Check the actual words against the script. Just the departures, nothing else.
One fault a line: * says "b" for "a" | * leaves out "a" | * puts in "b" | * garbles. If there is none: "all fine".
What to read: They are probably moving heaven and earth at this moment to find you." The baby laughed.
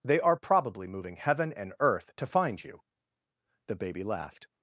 * leaves out "at this moment"